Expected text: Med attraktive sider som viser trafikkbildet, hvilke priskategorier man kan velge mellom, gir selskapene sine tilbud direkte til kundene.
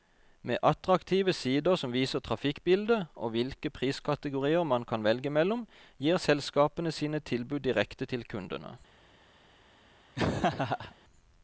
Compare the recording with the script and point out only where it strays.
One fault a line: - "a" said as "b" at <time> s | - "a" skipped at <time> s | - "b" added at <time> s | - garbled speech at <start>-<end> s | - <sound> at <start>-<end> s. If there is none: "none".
- "og" added at 3.1 s
- laugh at 10.1-10.9 s